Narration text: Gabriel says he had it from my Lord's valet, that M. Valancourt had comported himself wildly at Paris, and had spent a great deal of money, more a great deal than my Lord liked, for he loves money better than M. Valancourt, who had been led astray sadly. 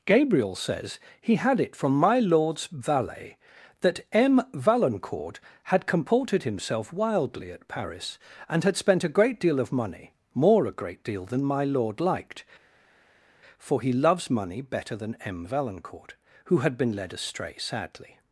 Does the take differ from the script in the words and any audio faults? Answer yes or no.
no